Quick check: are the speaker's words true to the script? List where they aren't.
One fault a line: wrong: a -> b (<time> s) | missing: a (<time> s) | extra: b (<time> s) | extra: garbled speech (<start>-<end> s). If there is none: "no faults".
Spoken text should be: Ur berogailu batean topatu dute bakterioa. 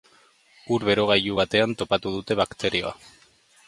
no faults